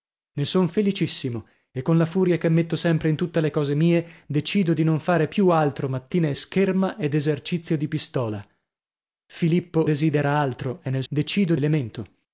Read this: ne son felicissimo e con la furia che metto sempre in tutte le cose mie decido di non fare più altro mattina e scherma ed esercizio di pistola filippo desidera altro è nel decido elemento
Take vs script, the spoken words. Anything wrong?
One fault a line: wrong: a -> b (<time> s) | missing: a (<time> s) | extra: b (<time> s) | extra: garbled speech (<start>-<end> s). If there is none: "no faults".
no faults